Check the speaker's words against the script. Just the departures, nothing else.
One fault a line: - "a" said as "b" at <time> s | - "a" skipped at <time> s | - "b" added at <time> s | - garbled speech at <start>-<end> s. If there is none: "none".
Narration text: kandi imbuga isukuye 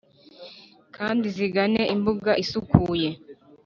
- "zigane" added at 1.4 s